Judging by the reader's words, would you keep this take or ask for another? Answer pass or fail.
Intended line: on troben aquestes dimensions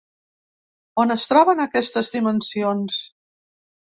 fail